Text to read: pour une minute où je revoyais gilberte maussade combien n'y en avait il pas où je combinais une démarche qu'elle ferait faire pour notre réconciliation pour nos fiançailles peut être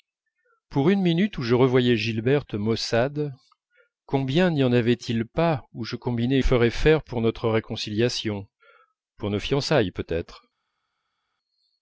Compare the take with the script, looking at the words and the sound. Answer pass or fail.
fail